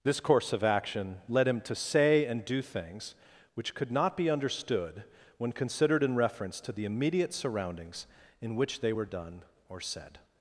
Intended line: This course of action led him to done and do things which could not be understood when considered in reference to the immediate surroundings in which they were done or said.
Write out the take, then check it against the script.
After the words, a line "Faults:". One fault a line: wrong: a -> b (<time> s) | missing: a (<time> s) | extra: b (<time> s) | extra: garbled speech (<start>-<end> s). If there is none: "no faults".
This course of action led him to say and do things which could not be understood when considered in reference to the immediate surroundings in which they were done or said.
Faults:
wrong: done -> say (1.8 s)